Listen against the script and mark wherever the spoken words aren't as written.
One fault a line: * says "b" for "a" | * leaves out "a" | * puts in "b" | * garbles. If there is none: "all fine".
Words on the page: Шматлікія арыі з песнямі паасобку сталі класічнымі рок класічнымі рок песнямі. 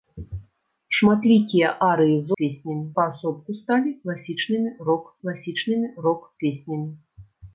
all fine